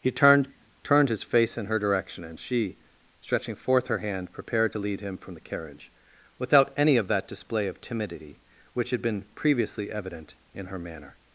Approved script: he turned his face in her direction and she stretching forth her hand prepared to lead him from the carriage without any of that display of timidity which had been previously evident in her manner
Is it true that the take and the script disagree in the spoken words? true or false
true